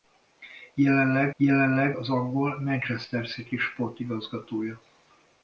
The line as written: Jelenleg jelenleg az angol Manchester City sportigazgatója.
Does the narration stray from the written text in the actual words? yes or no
no